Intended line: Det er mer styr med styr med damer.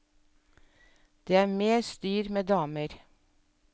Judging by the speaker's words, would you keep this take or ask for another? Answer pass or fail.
fail